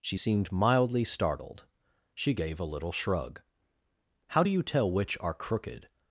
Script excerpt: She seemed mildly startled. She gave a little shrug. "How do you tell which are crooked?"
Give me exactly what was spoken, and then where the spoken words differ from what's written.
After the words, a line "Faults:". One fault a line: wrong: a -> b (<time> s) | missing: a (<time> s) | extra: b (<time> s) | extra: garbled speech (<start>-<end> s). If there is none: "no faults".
She seemed mildly startled. She gave a little shrug. "How do you tell which are crooked?"
Faults:
no faults